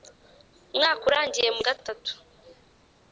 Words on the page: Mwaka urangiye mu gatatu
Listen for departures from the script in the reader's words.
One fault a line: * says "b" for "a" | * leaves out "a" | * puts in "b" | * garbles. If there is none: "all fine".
all fine